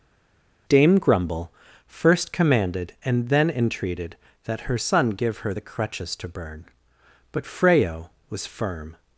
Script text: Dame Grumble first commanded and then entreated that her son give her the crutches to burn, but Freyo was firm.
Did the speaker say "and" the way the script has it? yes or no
yes